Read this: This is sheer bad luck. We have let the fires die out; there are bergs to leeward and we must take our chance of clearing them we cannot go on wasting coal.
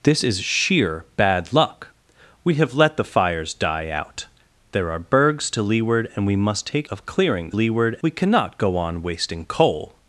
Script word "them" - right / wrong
wrong